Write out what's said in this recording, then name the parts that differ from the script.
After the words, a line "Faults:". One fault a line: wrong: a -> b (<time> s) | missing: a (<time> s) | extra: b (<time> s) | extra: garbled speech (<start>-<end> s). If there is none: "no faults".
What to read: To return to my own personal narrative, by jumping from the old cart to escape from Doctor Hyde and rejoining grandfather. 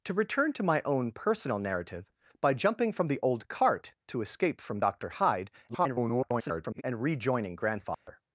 To return to my own personal narrative, by jumping from the old cart to escape from Doctor Hyde [garbled] and rejoining grandfather.
Faults:
extra: garbled speech (5.7-6.8 s)